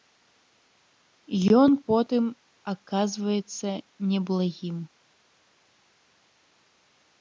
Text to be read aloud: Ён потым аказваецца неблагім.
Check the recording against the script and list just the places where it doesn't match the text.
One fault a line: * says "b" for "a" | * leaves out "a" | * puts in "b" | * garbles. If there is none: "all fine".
all fine